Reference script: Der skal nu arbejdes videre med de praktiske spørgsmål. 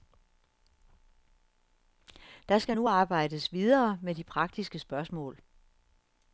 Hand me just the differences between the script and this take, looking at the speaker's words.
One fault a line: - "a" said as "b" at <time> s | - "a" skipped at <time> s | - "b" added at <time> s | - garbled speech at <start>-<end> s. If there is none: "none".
none